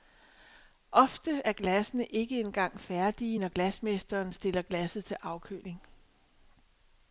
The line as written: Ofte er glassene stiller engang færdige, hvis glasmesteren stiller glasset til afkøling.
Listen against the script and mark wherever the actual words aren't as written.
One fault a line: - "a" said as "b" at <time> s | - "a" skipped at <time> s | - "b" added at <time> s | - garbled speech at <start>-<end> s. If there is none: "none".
- "stiller" said as "ikke" at 2.1 s
- "hvis" said as "når" at 3.4 s